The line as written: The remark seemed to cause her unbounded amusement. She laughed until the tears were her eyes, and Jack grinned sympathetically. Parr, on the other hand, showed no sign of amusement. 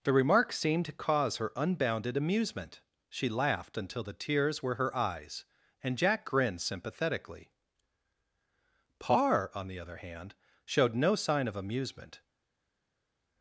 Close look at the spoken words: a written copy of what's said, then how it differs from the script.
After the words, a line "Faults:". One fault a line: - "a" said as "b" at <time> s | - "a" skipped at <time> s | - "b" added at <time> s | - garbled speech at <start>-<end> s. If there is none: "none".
The remark seemed to cause her unbounded amusement. She laughed until the tears were her eyes, and Jack grinned sympathetically. Parr, on the other hand, showed no sign of amusement.
Faults:
none